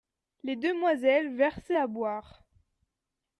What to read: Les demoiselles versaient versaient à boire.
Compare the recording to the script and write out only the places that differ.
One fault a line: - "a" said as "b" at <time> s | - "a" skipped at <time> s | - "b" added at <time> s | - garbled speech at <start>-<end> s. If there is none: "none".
- "versaient" skipped at 1.8 s